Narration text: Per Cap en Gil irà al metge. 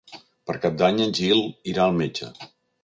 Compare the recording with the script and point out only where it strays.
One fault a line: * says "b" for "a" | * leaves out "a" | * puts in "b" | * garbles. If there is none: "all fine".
* puts in "d'Any"